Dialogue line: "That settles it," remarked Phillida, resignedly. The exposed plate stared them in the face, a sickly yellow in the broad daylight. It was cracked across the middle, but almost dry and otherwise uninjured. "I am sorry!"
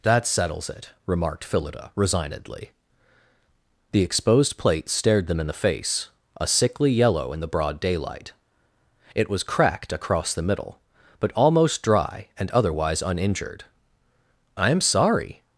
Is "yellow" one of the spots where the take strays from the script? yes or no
no